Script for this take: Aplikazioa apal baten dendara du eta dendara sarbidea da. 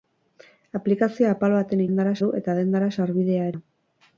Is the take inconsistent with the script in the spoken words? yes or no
no